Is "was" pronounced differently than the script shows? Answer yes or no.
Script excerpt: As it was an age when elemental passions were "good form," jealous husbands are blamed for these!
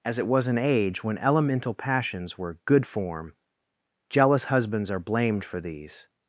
no